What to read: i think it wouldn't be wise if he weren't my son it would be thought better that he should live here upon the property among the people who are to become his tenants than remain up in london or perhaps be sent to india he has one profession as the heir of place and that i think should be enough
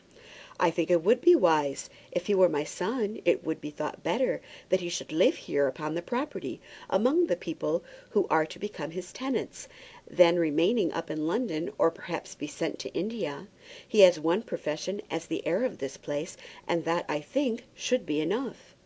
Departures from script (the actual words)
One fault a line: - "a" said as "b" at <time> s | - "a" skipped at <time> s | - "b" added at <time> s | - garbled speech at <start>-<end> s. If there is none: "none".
- "wouldn't" said as "would" at 1.0 s
- "weren't" said as "were" at 2.3 s
- "this" added at 15.8 s